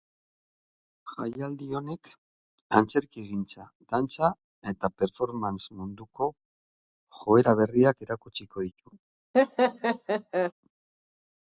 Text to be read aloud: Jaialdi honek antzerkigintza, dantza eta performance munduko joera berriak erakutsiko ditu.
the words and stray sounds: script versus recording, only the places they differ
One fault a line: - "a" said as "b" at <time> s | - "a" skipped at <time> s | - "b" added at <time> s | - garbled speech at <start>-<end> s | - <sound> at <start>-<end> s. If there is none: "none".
- laugh at 9.3-10.5 s